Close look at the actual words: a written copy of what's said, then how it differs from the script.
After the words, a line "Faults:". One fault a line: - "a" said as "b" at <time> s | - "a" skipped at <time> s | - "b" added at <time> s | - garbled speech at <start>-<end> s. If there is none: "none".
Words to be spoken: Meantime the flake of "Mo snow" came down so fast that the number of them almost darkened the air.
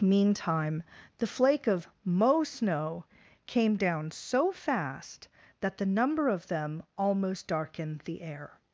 Meantime the flake of "Mo snow" came down so fast that the number of them almost darkened the air.
Faults:
none